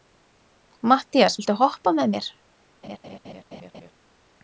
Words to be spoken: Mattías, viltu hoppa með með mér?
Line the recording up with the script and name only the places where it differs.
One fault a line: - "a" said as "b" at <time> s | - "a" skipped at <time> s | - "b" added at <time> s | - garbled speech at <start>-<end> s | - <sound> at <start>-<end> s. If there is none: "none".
- "með" skipped at 2.2 s
- laugh at 2.8-3.9 s